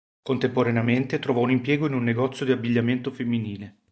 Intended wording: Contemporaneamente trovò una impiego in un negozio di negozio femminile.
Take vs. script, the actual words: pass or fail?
fail